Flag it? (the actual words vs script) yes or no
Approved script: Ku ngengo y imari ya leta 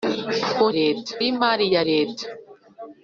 yes